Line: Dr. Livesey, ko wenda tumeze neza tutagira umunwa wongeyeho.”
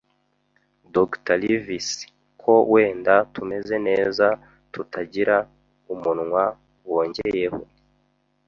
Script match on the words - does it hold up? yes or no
yes